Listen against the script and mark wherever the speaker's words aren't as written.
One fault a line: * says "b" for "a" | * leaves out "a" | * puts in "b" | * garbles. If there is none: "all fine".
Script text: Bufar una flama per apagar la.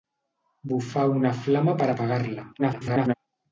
* garbles